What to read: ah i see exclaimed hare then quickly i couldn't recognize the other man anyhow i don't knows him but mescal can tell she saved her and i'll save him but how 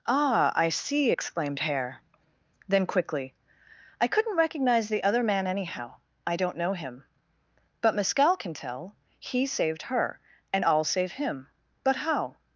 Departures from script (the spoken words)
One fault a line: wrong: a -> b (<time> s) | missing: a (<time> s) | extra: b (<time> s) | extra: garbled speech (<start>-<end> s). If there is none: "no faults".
wrong: knows -> know (6.5 s)
wrong: she -> he (9.2 s)